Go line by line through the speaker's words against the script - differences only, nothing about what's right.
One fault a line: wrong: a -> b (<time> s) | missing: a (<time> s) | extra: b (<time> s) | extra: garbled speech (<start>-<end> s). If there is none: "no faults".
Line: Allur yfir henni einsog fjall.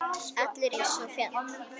missing: yfir henni (0.8 s)